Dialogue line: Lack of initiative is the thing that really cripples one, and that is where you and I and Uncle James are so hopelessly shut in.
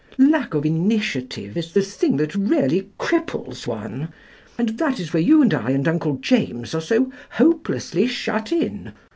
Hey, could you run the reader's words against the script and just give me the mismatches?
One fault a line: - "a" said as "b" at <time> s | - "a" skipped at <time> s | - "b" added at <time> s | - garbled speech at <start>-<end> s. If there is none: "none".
none